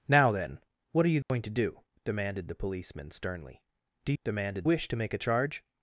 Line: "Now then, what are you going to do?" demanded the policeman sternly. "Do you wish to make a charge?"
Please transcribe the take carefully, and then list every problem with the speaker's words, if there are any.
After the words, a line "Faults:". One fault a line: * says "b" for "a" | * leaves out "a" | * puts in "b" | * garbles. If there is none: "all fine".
"Now then, what are you going to do?" demanded the policeman sternly. "Do demanded wish to make a charge?"
Faults:
* says "demanded" for "you"